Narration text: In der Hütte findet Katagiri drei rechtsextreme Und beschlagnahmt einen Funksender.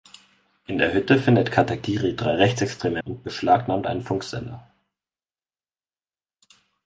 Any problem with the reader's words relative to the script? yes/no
no